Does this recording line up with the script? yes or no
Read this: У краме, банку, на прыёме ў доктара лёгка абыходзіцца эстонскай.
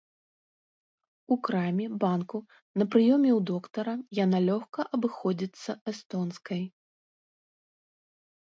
no